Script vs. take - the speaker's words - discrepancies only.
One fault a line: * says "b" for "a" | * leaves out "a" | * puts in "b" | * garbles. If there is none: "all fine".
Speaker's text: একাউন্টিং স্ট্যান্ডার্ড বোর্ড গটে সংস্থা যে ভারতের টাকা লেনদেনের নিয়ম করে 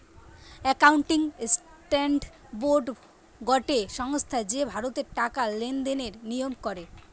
all fine